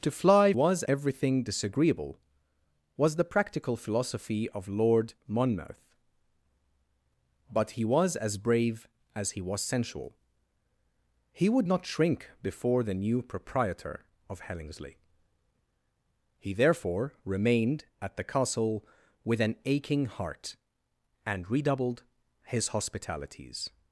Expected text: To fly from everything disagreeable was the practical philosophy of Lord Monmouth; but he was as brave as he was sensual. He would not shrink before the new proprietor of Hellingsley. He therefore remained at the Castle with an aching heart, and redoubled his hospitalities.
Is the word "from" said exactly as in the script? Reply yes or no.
no